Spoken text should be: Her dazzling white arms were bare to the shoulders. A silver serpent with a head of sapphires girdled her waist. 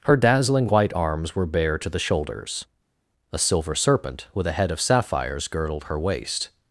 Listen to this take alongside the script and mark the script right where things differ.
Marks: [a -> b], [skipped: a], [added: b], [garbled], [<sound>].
Her dazzling white arms were bare to the shoulders. A silver serpent with a head of sapphires girdled her waist.